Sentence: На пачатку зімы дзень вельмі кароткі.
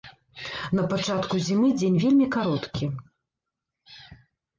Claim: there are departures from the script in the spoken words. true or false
false